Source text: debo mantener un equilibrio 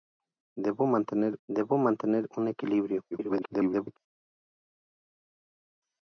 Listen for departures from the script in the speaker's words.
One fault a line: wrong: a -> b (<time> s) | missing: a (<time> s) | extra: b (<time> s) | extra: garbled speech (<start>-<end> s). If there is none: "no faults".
extra: debo mantener (1.5 s)
extra: garbled speech (3.1-4.0 s)